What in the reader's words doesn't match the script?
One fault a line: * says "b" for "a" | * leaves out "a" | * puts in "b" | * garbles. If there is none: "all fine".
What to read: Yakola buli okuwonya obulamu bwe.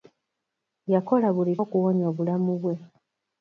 all fine